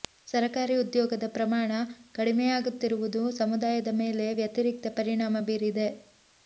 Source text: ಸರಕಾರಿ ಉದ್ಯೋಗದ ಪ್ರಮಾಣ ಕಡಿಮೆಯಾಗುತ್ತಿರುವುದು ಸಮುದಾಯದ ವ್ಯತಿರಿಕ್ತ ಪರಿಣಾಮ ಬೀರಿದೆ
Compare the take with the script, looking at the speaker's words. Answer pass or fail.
fail